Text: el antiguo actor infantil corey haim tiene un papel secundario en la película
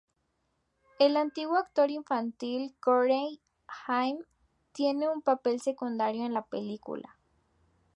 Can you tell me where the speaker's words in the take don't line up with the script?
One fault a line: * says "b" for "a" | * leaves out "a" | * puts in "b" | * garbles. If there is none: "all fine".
all fine